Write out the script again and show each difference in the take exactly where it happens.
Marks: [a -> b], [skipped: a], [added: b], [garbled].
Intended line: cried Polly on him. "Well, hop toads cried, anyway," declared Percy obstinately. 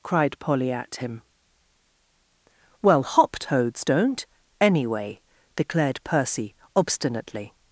cried Polly [on -> at] him. "Well, hop toads [cried, -> don't] anyway," declared Percy obstinately.